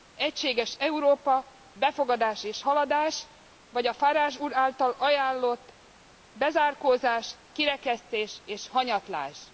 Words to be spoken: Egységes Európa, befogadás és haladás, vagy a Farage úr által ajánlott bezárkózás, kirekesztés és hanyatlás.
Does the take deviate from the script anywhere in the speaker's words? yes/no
no